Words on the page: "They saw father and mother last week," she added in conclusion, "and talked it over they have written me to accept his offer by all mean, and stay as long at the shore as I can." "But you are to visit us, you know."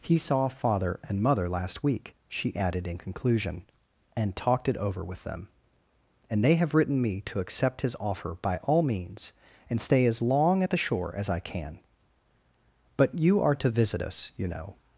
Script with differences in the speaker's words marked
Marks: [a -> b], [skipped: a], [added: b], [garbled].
["They -> He] saw father and mother last week," she added in conclusion, "and talked it over [added: with them and] they have written me to accept his offer by all [mean, -> means] and stay as long at the shore as I can." "But you are to visit us, you know."